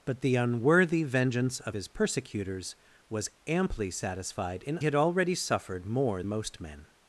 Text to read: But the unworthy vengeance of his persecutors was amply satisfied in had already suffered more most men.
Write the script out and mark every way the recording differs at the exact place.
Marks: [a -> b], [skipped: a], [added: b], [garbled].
But the unworthy vengeance of his persecutors was amply satisfied in had already suffered more most men.